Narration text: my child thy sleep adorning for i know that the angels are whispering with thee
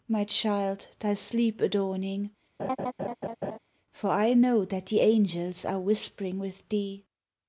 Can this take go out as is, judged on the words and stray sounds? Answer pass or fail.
fail